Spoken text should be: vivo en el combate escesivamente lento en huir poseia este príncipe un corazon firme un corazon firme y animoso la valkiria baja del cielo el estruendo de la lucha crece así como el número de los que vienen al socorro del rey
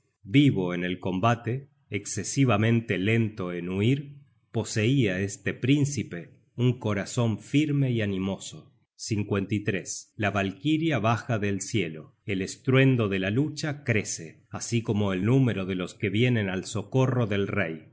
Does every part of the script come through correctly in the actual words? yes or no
no